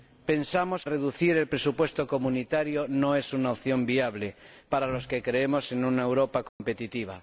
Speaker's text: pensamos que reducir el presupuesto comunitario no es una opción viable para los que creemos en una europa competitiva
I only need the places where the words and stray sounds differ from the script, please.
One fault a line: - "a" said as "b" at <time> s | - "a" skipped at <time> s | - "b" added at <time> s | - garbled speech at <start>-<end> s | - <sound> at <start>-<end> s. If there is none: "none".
- "que" skipped at 0.8 s
- dropout at 6.5-6.6 s